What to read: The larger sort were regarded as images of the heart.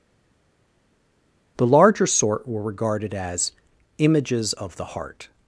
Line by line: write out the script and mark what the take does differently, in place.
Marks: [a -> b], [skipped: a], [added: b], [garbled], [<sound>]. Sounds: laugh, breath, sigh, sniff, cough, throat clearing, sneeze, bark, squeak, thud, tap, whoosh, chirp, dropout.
The larger sort were regarded as images of the heart.